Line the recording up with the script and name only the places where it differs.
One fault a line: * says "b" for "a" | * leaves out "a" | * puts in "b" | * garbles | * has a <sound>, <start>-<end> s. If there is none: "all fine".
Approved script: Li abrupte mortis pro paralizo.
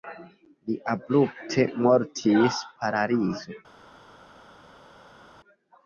* leaves out "pro"